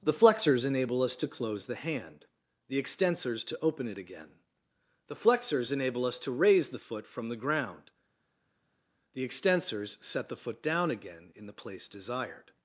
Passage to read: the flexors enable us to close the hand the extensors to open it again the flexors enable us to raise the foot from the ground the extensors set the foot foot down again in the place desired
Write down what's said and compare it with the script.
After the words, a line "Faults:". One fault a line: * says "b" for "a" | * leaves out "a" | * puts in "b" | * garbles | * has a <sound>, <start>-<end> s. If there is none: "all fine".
the flexors enable us to close the hand the extensors to open it again the flexors enable us to raise the foot from the ground the extensors set the foot down again in the place desired
Faults:
* leaves out "foot"